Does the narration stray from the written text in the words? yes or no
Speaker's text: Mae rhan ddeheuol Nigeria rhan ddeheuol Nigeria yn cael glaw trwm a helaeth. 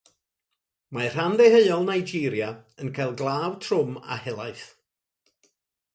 yes